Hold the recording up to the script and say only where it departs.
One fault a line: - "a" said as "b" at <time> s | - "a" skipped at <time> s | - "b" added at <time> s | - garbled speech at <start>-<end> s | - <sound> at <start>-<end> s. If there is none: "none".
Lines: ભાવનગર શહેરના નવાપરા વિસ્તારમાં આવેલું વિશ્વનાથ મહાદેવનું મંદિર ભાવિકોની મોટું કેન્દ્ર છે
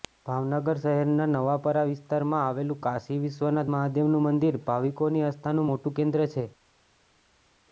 - "કાશી" added at 2.8 s
- "આસ્થાનું" added at 5.3 s